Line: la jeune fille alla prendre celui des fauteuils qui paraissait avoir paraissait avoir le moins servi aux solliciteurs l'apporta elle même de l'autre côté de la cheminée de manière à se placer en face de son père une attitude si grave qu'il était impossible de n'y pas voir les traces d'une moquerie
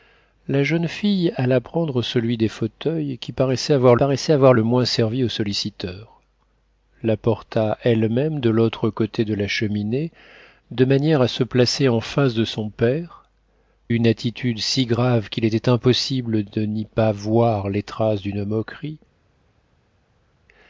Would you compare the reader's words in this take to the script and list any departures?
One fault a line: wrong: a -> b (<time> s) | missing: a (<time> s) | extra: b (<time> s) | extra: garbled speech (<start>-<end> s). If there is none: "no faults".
no faults